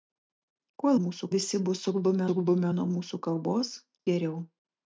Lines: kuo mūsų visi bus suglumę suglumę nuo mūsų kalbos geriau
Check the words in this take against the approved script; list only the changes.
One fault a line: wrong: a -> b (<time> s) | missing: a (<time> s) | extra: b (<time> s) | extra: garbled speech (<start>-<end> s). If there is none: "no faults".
no faults